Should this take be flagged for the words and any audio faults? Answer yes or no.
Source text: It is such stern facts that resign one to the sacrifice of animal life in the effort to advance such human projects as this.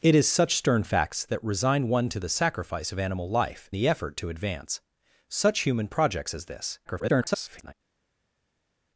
yes